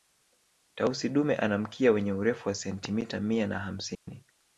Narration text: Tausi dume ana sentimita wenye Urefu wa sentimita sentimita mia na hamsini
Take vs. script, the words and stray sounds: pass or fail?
fail